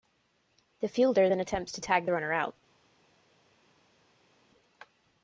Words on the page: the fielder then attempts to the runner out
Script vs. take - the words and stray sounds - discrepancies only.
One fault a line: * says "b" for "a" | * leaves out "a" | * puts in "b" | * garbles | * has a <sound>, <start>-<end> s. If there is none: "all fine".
* puts in "tag"